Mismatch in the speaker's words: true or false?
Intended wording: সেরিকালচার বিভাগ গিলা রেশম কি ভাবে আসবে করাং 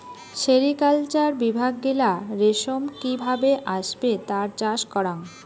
true